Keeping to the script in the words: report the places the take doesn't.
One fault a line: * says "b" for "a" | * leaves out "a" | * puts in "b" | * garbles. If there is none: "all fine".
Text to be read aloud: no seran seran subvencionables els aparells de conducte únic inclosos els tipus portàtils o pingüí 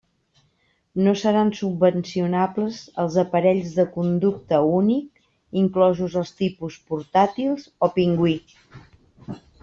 * leaves out "seran"